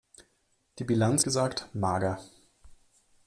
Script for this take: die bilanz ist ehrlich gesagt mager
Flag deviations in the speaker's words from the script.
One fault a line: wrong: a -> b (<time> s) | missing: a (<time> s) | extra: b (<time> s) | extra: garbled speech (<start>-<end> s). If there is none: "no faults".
missing: ist ehrlich (1.2 s)